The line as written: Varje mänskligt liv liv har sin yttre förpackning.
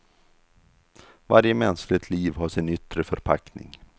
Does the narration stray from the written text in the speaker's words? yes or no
yes